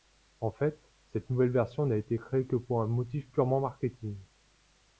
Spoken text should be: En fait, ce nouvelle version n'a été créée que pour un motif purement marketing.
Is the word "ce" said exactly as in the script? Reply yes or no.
no